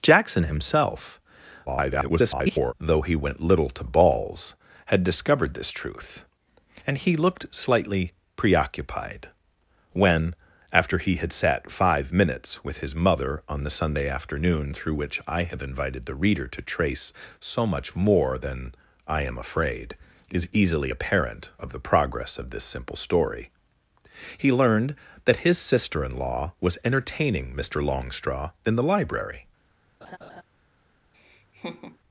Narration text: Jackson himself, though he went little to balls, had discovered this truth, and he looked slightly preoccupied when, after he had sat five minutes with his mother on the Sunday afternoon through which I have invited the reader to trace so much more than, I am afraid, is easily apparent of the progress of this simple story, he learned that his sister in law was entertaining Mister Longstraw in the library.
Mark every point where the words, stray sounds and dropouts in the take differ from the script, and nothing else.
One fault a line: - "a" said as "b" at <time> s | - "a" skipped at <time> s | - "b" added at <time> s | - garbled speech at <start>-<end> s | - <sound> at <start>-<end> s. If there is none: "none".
- garbled speech at 1.7-2.7 s
- laugh at 30.0-30.4 s
- laugh at 31.1-32.0 s